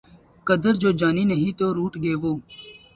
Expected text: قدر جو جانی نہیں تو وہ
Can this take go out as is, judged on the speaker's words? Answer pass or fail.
fail